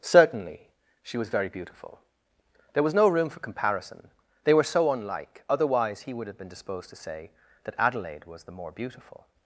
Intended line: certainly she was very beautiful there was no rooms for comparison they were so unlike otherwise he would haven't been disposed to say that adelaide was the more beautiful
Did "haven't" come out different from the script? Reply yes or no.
yes